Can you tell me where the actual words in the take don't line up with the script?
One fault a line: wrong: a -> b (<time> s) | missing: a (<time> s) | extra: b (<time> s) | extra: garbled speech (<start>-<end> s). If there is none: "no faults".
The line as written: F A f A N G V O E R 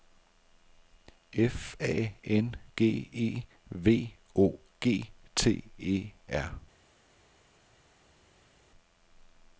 missing: f A (2.1 s)
extra: E (3.1 s)
extra: G T (4.8 s)